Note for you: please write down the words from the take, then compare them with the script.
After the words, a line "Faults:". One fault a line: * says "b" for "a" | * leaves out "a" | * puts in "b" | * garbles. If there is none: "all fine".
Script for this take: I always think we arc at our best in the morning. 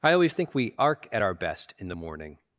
I always think we arc at our best in the morning.
Faults:
all fine